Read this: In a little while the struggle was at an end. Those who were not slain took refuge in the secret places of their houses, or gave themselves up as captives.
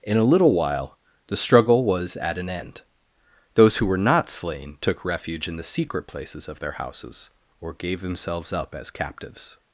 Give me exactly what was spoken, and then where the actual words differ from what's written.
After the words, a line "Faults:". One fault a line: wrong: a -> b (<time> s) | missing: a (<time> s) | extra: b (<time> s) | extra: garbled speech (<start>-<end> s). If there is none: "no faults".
In a little while the struggle was at an end. Those who were not slain took refuge in the secret places of their houses, or gave themselves up as captives.
Faults:
no faults